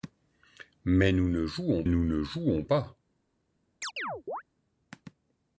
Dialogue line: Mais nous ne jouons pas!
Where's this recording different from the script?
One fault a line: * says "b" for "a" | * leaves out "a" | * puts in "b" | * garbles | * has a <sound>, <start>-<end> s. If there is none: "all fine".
* puts in "nous ne jouons"
* has a chirp, 3.8-4.4 s